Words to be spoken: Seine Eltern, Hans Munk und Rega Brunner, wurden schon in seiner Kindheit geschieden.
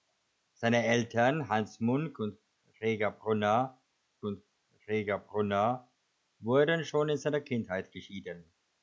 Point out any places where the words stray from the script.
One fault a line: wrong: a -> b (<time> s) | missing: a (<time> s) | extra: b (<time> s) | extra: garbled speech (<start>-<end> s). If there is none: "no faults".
extra: und Rega Brunner (4.2 s)